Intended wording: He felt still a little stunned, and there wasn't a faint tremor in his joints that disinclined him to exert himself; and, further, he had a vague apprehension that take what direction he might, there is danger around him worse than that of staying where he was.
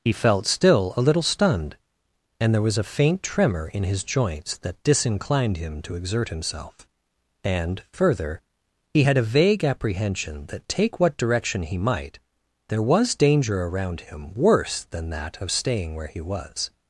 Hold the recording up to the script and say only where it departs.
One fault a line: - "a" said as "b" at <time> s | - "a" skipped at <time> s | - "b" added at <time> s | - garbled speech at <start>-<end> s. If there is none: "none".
- "wasn't" said as "was" at 2.6 s
- "is" said as "was" at 12.8 s